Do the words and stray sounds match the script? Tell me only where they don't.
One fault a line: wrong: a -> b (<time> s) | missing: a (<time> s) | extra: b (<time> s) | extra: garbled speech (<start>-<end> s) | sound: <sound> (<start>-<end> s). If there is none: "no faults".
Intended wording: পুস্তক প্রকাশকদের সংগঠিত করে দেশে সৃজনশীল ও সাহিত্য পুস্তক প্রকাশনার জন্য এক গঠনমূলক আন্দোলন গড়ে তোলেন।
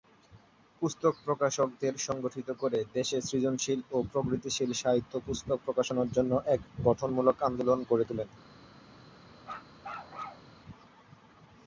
extra: প্রগতিশীল (4.1 s)
sound: bark (9.4-10.5 s)